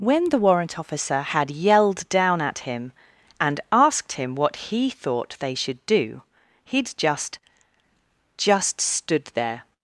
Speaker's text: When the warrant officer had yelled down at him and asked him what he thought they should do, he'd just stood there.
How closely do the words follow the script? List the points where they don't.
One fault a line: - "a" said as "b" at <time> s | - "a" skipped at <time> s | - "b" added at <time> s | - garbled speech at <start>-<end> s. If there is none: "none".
- "just" added at 8.4 s